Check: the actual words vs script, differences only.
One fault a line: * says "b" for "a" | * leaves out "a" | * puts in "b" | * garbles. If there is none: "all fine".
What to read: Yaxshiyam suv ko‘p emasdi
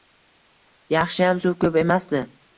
all fine